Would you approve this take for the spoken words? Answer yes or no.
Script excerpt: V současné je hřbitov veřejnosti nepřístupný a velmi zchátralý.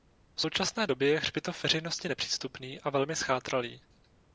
no